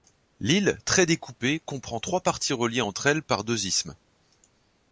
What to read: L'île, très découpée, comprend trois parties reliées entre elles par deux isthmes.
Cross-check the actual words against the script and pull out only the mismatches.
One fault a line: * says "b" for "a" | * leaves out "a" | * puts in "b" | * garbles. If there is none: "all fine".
all fine